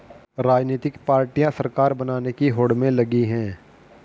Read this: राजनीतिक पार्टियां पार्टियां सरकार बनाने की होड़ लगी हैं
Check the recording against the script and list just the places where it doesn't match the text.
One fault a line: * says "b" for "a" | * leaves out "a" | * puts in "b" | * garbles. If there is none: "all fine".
* leaves out "पार्टियां"
* puts in "में"